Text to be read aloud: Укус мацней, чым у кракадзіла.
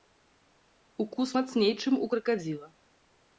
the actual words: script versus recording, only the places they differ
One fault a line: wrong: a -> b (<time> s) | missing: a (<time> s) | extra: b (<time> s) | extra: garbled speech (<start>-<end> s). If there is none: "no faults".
no faults